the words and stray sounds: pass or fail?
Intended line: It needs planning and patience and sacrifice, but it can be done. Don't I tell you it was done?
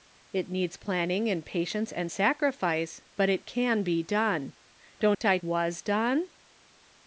fail